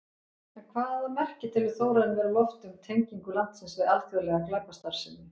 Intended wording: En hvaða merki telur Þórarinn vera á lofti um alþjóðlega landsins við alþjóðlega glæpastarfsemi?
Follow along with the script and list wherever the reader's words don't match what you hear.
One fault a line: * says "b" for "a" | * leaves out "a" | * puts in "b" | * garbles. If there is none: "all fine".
* says "tengingu" for "alþjóðlega"